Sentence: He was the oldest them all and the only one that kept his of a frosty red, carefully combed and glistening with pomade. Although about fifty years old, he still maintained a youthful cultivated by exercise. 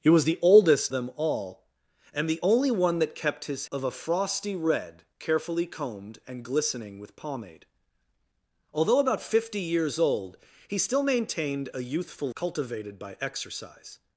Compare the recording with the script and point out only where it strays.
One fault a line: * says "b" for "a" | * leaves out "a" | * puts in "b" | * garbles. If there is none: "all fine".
all fine